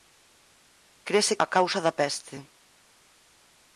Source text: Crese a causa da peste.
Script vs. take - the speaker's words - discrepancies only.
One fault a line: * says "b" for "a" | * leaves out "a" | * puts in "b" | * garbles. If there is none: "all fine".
all fine